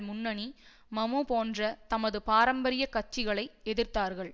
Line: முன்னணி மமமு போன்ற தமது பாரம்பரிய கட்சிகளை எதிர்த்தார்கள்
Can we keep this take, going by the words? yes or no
yes